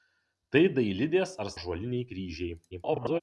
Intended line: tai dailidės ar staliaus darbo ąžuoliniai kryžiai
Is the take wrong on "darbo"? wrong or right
wrong